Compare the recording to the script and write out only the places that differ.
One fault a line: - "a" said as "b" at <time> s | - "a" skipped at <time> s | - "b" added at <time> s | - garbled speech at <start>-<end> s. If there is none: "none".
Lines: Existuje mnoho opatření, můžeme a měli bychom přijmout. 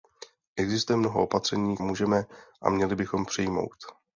none